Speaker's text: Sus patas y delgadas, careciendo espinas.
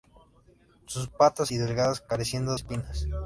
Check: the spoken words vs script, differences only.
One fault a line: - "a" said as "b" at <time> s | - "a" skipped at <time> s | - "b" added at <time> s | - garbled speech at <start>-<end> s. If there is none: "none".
none